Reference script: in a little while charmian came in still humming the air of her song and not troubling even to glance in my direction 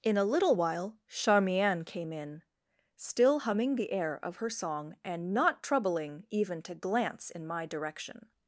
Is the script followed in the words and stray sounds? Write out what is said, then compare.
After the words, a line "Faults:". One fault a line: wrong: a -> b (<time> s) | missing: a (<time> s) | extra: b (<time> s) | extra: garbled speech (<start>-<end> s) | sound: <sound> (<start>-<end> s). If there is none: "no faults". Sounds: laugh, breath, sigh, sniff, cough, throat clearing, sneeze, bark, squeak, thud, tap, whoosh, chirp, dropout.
in a little while charmian came in still humming the air of her song and not troubling even to glance in my direction
Faults:
no faults